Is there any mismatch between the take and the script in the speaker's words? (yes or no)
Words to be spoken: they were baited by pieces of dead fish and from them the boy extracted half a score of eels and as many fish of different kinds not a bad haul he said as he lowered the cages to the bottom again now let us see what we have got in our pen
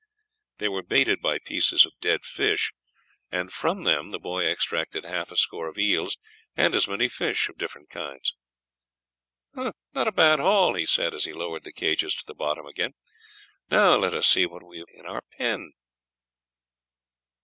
yes